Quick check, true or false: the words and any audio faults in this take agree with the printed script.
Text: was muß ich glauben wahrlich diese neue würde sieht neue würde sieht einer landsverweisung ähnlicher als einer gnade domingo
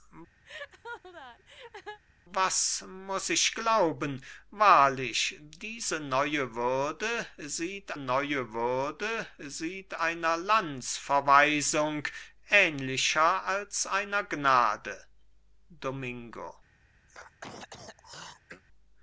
false